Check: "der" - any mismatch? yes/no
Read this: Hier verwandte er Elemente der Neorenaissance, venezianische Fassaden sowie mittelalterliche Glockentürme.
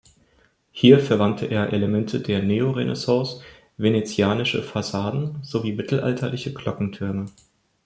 no